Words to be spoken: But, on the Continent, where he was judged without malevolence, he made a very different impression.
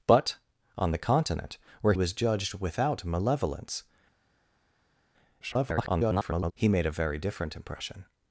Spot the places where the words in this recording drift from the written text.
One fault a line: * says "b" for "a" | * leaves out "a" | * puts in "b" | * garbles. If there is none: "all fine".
* leaves out "he"
* garbles